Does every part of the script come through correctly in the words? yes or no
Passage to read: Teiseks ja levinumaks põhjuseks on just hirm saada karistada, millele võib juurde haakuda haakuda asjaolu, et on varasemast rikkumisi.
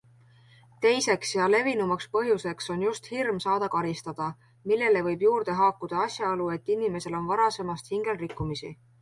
no